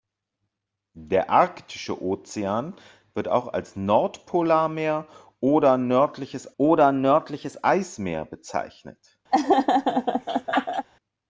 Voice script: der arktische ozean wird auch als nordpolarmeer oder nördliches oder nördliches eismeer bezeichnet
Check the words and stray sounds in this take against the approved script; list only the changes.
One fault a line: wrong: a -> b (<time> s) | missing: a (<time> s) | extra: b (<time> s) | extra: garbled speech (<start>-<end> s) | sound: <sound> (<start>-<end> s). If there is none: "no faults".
sound: laugh (9.3-10.9 s)